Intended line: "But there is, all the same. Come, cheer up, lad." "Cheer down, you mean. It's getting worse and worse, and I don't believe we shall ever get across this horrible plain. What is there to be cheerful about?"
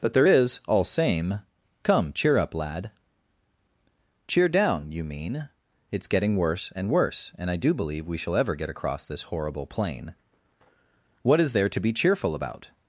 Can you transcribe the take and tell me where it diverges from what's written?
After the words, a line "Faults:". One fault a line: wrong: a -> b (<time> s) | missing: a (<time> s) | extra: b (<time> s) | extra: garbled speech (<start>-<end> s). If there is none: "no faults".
"But there is, all same. Come, cheer up, lad." "Cheer down, you mean. It's getting worse and worse, and I do believe we shall ever get across this horrible plain. What is there to be cheerful about?"
Faults:
missing: the (0.8 s)
wrong: don't -> do (7.6 s)